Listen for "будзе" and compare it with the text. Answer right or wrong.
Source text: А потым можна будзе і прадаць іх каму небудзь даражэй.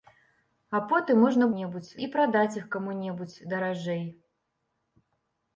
wrong